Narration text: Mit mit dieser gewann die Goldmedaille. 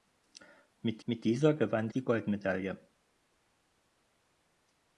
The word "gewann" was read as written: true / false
true